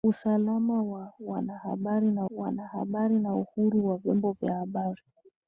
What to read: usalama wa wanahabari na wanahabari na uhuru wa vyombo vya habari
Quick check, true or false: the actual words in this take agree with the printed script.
true